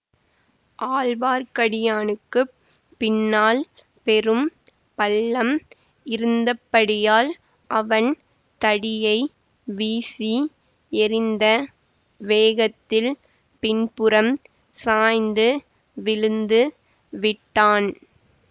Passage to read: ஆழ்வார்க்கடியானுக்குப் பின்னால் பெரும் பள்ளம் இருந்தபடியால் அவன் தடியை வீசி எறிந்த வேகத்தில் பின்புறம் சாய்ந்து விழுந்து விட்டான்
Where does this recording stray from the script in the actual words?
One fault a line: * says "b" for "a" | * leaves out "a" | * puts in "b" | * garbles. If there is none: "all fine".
all fine